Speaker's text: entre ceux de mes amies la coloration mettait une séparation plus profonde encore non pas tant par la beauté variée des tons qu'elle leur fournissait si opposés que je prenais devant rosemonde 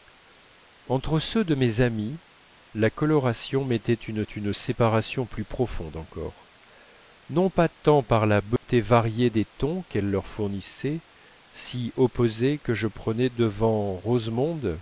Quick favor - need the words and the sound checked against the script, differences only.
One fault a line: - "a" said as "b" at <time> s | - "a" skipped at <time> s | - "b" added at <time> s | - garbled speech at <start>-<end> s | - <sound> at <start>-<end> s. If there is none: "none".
- "une" added at 4.2 s
- dropout at 8.6-8.6 s